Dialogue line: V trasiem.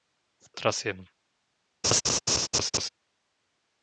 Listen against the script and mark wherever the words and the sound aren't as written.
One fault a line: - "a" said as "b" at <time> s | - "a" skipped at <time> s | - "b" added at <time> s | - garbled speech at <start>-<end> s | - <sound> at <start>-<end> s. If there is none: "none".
- laugh at 1.8-2.9 s